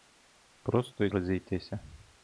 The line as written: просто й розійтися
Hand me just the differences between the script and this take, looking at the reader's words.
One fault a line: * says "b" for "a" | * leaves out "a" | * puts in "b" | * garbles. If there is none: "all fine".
all fine